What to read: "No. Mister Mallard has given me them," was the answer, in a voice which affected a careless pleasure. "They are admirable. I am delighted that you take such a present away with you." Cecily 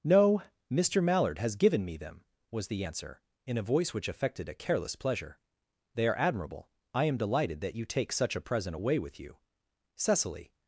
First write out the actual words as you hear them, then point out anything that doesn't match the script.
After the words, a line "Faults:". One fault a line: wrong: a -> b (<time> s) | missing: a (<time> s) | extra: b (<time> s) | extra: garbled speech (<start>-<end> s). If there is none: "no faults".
"No. Mister Mallard has given me them," was the answer, in a voice which affected a careless pleasure. "They are admirable. I am delighted that you take such a present away with you." Cecily
Faults:
no faults